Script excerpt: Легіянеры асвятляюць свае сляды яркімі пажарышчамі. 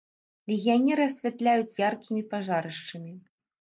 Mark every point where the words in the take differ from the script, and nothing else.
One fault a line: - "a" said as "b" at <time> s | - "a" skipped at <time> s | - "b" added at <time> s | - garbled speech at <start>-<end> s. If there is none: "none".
- "свае сляды" skipped at 1.8 s